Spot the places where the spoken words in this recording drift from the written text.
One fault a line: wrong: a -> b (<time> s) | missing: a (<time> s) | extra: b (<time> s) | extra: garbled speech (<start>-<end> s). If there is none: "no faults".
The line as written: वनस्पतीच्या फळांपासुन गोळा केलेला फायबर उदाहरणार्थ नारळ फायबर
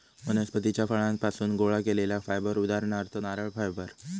no faults